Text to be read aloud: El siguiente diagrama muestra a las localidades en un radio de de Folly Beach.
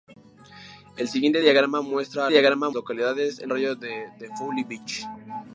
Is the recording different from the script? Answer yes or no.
yes